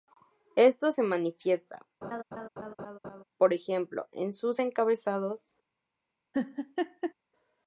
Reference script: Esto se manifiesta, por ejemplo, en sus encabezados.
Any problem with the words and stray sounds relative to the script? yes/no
yes